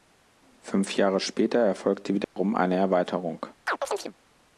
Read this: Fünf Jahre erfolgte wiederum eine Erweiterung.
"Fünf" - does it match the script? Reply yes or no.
yes